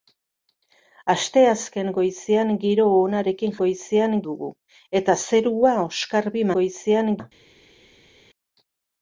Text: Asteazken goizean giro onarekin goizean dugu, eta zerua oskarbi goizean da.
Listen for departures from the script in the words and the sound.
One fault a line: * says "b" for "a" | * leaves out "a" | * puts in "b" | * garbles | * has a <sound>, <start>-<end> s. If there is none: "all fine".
all fine